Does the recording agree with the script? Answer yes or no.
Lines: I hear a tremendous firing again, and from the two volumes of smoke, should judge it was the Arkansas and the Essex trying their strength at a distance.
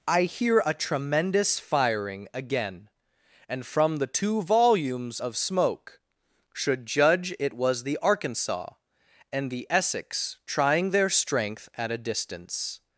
yes